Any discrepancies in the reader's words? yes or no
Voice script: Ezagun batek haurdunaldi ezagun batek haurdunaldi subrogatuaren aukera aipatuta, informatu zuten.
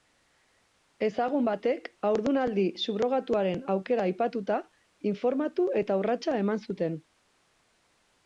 yes